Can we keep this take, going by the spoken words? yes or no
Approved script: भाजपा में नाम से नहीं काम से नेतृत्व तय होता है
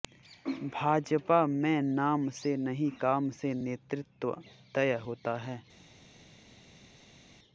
yes